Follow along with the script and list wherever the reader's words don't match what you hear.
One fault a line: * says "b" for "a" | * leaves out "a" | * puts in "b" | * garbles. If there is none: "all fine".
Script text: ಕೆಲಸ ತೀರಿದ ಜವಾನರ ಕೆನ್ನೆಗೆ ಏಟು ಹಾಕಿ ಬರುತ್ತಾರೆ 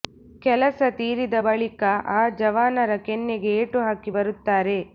* puts in "ಬಳಿಕ ಆ"